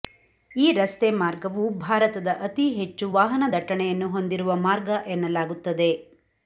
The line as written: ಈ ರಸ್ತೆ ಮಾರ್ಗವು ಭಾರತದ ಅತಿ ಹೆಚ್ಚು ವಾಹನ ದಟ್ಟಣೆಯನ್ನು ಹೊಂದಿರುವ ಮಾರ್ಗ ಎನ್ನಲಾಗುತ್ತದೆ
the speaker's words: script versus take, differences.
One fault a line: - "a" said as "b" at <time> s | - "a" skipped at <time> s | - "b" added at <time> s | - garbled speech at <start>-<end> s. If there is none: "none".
none